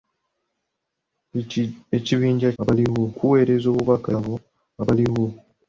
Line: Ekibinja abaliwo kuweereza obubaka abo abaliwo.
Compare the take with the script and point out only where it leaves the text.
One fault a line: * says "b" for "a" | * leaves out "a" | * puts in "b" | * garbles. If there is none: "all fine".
all fine